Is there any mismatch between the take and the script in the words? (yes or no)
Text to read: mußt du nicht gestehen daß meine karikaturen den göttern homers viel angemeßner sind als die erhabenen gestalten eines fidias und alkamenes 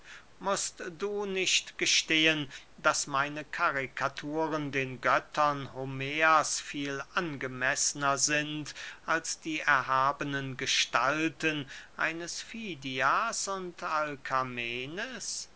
no